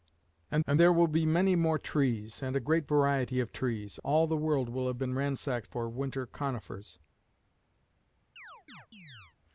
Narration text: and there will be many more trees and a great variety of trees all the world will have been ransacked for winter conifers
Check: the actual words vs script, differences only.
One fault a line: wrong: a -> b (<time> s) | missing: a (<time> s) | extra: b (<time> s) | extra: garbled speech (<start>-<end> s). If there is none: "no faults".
extra: and (0.6 s)